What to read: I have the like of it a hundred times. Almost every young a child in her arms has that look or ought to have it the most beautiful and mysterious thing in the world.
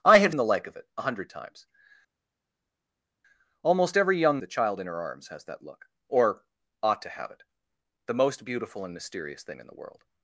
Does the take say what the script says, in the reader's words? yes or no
yes